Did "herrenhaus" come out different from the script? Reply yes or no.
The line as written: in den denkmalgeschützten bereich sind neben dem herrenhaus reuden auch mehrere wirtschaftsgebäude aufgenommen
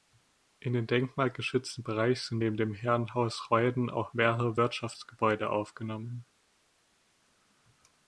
no